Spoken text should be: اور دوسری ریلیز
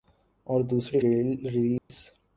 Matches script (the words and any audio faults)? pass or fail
fail